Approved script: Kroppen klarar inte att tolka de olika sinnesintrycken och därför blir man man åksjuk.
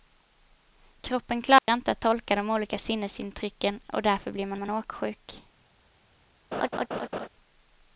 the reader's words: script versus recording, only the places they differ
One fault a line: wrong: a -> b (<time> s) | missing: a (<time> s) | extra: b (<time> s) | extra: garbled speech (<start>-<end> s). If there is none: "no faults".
no faults